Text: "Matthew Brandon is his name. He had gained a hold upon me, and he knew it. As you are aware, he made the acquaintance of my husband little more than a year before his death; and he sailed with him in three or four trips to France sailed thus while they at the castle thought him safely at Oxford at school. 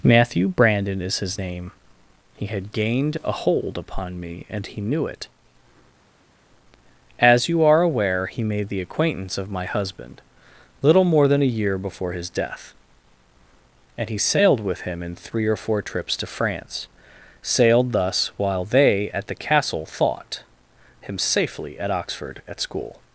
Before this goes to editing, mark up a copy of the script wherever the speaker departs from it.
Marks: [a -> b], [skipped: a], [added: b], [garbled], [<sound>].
"Matthew Brandon is his name. He had gained a hold upon me, and he knew it. As you are aware, he made the acquaintance of my husband little more than a year before his death; and he sailed with him in three or four trips to France sailed thus while they at the castle thought him safely at Oxford at school.